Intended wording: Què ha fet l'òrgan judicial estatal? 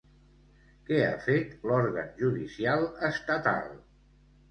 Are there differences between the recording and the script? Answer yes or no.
no